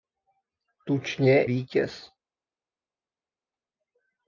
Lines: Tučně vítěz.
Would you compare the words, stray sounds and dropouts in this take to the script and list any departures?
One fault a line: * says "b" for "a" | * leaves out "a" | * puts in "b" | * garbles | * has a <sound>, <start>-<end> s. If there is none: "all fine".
all fine